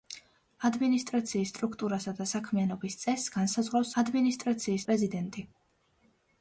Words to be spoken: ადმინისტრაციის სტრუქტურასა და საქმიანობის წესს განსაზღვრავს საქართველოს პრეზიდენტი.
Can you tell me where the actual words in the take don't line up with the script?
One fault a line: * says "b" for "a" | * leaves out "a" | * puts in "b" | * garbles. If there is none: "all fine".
* says "ადმინისტრაციის" for "საქართველოს"